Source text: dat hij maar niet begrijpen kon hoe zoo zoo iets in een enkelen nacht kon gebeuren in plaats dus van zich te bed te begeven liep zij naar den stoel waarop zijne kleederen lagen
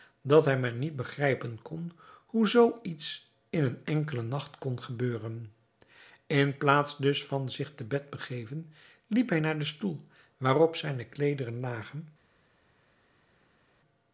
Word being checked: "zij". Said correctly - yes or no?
no